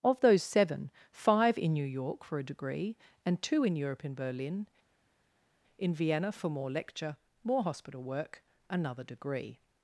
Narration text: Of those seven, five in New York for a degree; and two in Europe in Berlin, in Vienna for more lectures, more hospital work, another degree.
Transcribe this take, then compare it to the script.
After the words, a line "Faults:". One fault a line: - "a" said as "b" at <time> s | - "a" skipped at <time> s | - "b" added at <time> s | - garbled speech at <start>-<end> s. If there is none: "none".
Of those seven, five in New York for a degree; and two in Europe in Berlin, in Vienna for more lecture, more hospital work, another degree.
Faults:
- "lectures" said as "lecture" at 6.7 s